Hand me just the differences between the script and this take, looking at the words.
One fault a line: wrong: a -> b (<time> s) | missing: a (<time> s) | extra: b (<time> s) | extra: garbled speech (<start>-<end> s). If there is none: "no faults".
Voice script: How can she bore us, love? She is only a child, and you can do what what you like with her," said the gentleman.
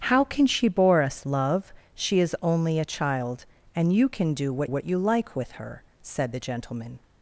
no faults